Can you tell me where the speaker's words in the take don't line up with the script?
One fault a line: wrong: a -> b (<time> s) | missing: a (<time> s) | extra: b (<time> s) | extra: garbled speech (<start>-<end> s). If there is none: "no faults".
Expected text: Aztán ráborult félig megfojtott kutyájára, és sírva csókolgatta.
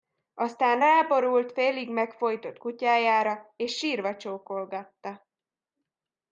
no faults